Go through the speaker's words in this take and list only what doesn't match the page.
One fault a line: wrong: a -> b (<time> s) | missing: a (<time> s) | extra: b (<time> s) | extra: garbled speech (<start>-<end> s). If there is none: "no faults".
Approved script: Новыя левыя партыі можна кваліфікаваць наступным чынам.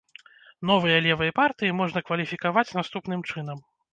no faults